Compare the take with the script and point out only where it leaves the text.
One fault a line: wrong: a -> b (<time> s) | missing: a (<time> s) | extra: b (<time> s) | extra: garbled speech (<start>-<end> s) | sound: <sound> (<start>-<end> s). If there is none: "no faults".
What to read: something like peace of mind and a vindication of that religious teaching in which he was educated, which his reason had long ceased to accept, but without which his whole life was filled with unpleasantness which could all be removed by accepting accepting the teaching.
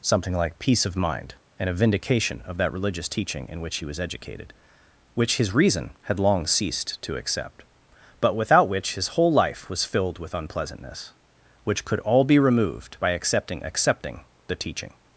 no faults